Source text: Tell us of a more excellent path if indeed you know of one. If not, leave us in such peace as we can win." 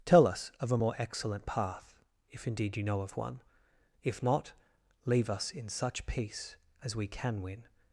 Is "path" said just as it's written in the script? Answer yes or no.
yes